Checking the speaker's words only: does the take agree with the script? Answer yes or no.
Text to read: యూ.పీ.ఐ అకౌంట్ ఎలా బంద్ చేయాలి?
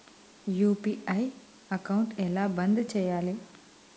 yes